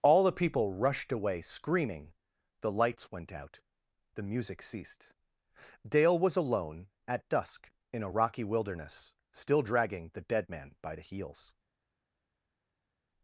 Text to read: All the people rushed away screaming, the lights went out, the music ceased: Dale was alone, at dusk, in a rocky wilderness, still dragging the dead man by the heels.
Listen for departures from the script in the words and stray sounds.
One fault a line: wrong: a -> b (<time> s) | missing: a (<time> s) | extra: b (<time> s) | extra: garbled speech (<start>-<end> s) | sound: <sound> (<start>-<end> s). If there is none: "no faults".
no faults